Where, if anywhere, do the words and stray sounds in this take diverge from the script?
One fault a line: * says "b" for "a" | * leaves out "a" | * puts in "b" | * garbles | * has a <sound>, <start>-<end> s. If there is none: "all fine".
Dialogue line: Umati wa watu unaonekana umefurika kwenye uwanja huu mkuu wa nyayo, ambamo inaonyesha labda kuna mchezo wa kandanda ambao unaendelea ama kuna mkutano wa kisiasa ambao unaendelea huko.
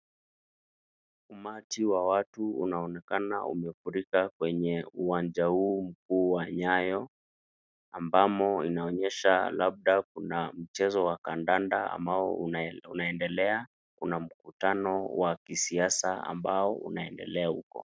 * leaves out "ama"